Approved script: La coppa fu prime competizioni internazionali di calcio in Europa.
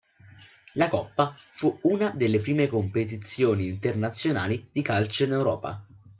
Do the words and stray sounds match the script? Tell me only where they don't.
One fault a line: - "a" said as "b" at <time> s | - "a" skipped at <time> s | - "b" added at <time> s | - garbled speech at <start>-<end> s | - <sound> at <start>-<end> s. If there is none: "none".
- "una delle" added at 1.8 s